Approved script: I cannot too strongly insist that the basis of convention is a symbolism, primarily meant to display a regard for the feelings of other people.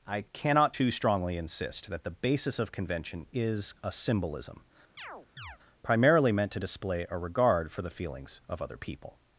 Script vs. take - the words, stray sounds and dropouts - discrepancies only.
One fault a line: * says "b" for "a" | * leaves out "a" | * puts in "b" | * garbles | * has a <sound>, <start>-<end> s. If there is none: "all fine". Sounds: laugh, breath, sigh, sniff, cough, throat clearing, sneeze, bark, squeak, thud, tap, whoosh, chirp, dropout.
* has a chirp, 5.0-5.6 s